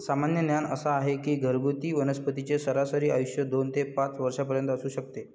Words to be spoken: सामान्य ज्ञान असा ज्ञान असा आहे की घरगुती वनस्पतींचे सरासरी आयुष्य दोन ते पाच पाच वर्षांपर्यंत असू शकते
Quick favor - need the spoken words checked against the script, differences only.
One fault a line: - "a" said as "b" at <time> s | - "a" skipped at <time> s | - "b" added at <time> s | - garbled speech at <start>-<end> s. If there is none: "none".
- "ज्ञान असा" skipped at 0.9 s
- "पाच" skipped at 4.2 s